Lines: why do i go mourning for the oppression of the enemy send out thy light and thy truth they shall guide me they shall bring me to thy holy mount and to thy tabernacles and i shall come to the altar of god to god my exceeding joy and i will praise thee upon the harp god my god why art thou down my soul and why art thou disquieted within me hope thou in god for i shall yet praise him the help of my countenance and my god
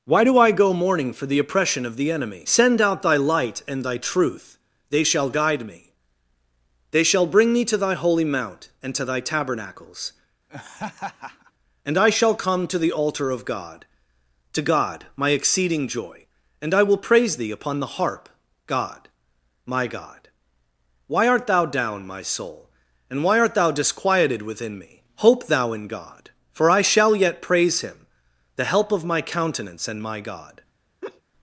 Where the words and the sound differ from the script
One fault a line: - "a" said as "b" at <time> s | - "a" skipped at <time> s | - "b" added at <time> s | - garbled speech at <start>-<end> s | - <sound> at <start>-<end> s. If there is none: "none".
- laugh at 10.5-11.5 s
- laugh at 31.0-31.2 s